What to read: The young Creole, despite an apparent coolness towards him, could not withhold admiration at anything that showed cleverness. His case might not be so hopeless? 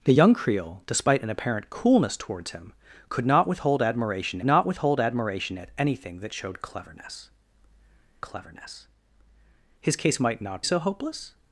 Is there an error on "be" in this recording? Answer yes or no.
yes